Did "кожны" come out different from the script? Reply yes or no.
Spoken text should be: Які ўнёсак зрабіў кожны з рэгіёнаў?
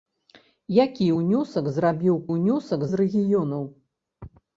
yes